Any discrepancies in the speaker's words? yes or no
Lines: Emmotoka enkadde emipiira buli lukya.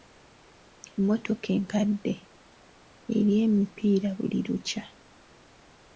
yes